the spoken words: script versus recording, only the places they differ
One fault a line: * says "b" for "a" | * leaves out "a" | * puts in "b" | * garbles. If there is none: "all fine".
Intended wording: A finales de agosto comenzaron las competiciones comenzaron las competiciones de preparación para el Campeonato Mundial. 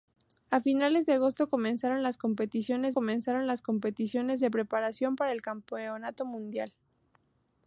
all fine